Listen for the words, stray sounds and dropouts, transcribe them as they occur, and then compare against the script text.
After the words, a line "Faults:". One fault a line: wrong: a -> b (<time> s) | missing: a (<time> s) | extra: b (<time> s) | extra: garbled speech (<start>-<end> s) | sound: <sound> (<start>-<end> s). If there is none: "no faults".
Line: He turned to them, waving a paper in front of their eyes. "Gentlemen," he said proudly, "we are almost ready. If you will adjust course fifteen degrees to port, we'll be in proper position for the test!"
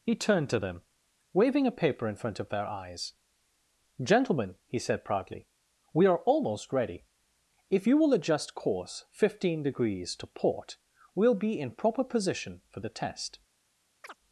He turned to them, waving a paper in front of their eyes. "Gentlemen," he said proudly, "we are almost ready. If you will adjust course fifteen degrees to port, we'll be in proper position for the test!"
Faults:
sound: chirp (14.0-14.2 s)